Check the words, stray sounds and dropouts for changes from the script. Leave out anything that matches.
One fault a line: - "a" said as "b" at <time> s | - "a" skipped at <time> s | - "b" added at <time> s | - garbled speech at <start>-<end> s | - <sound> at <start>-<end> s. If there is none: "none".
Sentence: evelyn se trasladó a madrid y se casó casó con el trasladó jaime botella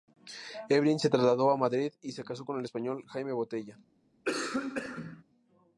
- "casó" skipped at 2.4 s
- "trasladó" said as "español" at 2.6 s
- cough at 4.2-5.2 s